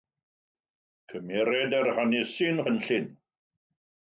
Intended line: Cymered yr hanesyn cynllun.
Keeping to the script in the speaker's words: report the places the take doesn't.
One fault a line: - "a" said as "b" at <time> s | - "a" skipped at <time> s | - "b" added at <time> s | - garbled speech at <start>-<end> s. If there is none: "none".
none